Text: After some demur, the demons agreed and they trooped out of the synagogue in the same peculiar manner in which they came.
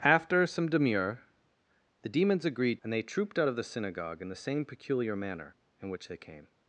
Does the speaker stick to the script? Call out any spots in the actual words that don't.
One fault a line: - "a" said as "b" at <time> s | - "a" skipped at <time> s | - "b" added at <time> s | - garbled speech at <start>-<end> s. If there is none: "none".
none